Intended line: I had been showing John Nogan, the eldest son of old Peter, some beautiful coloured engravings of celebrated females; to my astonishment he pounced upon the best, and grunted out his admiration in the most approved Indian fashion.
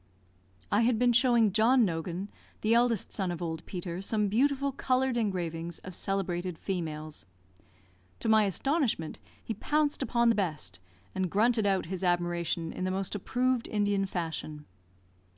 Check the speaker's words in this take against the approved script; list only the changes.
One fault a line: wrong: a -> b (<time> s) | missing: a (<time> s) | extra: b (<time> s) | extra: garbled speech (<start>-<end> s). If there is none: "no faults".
no faults